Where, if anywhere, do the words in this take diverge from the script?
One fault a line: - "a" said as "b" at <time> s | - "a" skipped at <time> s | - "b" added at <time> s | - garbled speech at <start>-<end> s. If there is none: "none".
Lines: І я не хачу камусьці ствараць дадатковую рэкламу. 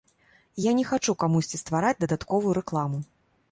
none